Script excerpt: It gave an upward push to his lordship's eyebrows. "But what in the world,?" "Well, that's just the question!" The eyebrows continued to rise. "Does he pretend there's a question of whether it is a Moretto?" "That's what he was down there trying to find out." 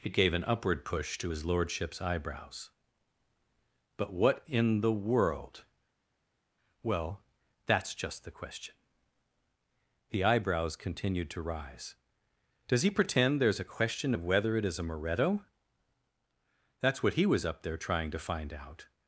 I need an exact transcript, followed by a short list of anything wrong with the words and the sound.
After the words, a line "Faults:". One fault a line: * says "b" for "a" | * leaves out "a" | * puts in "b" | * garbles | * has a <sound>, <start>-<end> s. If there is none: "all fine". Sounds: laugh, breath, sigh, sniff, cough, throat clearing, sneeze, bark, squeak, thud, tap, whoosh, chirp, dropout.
It gave an upward push to his lordship's eyebrows. "But what in the world,?" "Well, that's just the question!" The eyebrows continued to rise. "Does he pretend there's a question of whether it is a Moretto?" "That's what he was up there trying to find out."
Faults:
* says "up" for "down"